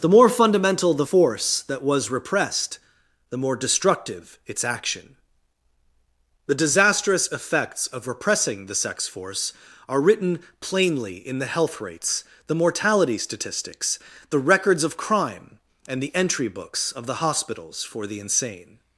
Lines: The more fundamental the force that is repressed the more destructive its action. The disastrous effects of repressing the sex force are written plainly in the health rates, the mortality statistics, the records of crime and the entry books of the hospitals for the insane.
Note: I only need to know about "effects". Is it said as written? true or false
true